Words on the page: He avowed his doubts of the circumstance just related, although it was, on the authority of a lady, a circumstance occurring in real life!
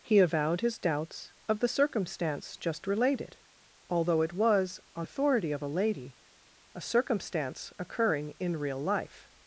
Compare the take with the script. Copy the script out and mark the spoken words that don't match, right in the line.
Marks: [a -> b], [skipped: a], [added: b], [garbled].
He avowed his doubts of the circumstance just related, although it was, on [skipped: the] authority of a lady, a circumstance occurring in real life!